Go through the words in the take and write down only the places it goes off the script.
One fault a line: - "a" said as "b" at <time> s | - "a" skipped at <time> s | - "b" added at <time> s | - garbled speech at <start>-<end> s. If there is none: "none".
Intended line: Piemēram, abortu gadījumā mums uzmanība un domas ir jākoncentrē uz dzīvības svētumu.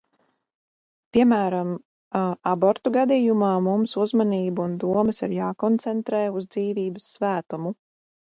none